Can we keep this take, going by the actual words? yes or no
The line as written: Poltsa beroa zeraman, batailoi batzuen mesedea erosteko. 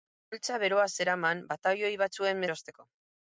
no